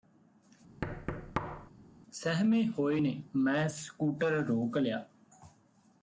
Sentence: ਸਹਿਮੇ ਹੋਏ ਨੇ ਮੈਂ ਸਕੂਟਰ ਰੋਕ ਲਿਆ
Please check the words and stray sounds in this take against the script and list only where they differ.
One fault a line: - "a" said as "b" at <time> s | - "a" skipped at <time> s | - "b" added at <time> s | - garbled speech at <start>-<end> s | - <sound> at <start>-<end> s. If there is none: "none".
- thud at 0.8-1.7 s